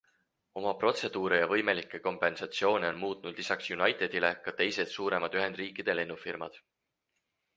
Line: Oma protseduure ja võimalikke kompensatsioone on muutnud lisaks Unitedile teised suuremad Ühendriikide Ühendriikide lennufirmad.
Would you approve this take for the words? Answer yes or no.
no